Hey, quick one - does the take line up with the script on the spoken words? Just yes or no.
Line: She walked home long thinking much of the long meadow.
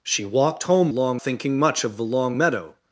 yes